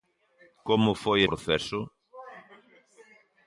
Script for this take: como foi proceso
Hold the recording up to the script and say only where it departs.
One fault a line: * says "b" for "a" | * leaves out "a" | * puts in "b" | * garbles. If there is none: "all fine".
all fine